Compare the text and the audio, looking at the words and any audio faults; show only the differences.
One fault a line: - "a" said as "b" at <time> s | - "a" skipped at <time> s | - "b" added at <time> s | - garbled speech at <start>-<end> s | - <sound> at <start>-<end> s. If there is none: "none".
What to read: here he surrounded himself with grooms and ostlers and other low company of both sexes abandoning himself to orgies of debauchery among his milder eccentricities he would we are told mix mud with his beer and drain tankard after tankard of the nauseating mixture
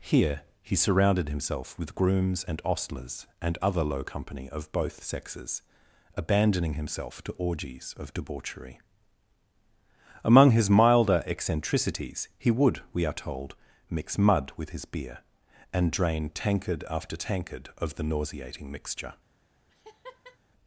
- laugh at 19.7-20.4 s